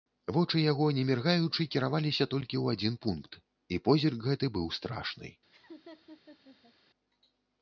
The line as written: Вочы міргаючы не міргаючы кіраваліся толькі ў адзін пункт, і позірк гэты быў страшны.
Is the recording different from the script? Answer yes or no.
yes